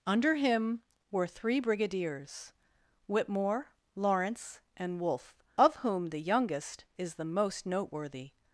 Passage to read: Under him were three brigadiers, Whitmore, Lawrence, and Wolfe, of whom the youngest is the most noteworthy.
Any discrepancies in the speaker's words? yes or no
no